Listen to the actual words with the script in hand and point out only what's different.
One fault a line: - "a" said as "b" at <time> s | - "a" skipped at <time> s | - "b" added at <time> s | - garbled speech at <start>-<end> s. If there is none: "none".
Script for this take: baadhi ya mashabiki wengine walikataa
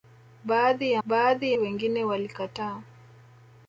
- "mashabiki" said as "baadhi" at 1.0 s